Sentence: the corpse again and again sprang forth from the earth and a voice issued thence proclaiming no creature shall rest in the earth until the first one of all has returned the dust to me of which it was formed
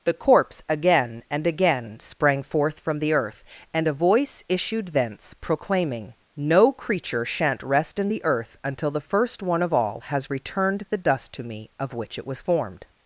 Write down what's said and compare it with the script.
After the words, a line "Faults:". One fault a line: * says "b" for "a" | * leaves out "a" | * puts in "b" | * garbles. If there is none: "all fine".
the corpse again and again sprang forth from the earth and a voice issued thence proclaiming no creature shan't rest in the earth until the first one of all has returned the dust to me of which it was formed
Faults:
* says "shan't" for "shall"